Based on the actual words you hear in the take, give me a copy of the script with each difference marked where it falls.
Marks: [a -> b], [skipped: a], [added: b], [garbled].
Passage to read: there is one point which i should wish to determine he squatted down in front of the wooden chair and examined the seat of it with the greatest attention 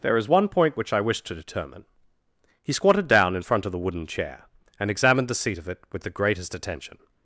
there is one point which i [skipped: should] wish to determine he squatted down in front of the wooden chair and examined the seat of it with the greatest attention